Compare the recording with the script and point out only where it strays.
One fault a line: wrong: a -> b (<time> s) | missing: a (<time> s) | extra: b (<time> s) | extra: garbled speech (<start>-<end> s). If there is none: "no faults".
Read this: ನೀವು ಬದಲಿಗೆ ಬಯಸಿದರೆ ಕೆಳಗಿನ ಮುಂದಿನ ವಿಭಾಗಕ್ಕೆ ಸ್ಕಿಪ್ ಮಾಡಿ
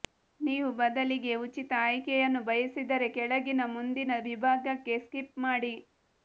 extra: ಉಚಿತ ಆಯ್ಕೆಯನ್ನು (1.4 s)